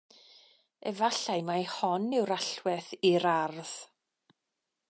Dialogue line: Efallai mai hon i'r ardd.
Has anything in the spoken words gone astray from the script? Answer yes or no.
yes